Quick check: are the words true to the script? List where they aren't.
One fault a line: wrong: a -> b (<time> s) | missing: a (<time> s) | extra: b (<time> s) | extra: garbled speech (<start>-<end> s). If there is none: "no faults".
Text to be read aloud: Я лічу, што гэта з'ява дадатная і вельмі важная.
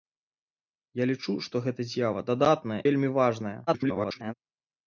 missing: і (2.8 s)
extra: garbled speech (3.7-4.3 s)